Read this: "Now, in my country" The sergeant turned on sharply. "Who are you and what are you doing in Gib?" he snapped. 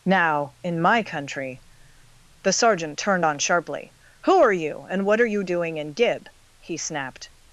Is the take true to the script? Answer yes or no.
yes